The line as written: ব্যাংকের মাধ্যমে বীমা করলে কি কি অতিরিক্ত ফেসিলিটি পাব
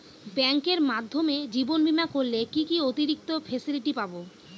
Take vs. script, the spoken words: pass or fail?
fail